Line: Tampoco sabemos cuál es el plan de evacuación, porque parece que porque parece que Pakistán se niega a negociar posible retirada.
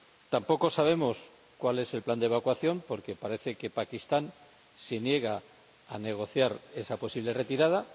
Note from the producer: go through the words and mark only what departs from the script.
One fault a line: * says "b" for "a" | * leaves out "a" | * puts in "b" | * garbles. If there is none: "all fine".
* leaves out "porque parece que"
* puts in "esa"